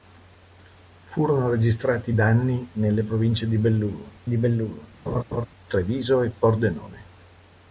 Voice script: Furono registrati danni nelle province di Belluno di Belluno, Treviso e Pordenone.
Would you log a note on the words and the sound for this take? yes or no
yes